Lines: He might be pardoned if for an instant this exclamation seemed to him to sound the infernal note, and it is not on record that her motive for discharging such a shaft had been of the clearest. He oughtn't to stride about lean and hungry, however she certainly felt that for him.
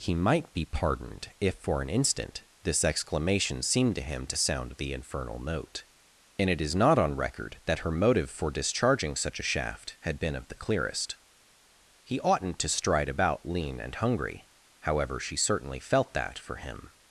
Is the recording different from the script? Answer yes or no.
no